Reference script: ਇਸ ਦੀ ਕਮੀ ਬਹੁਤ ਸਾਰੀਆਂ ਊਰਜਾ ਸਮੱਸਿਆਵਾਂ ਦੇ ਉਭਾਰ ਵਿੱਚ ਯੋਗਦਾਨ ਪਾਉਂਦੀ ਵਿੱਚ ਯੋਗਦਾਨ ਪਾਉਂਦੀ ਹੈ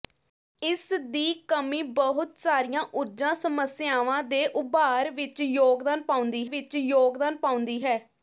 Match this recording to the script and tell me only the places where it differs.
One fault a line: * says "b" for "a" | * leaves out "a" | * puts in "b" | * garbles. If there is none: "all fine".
all fine